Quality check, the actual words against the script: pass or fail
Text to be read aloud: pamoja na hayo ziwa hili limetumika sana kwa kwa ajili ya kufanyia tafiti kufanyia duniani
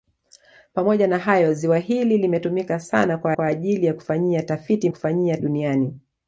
pass